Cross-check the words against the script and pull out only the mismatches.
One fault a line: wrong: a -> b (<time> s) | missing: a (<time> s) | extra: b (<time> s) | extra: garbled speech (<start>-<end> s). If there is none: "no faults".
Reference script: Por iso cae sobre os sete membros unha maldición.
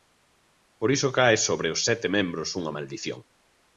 no faults